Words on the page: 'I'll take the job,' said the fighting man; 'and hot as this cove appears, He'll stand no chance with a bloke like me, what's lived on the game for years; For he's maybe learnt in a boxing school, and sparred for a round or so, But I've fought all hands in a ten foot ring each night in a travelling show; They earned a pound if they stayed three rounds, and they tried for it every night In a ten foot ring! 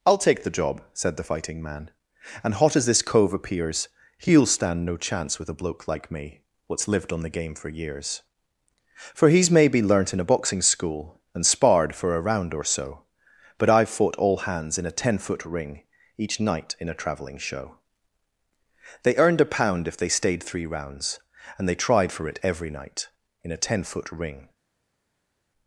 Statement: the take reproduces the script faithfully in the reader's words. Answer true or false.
true